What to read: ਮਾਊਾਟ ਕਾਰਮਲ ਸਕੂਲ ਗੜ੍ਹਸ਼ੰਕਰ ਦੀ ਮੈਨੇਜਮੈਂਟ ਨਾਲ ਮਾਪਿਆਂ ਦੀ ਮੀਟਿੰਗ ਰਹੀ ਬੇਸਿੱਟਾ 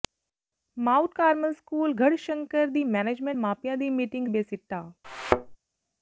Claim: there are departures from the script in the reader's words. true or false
true